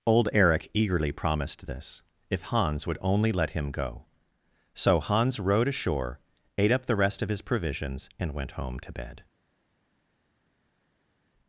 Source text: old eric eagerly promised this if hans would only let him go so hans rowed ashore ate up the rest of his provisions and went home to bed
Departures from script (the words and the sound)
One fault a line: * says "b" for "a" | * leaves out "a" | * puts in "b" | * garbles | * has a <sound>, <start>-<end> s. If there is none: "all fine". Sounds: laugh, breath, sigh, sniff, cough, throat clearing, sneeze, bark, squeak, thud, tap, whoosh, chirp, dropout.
all fine